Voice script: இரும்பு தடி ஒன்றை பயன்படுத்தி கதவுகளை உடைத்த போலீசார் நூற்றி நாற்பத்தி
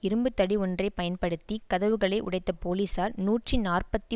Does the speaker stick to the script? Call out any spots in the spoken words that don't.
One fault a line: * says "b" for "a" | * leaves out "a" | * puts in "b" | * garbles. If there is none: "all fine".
all fine